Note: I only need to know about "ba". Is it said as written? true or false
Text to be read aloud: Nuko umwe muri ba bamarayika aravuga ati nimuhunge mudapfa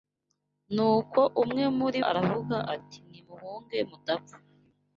false